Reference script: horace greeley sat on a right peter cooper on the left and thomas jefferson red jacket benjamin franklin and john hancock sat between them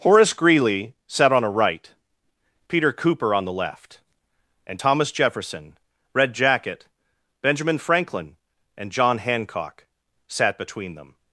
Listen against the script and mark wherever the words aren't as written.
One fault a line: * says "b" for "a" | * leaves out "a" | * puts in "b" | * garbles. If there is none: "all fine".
all fine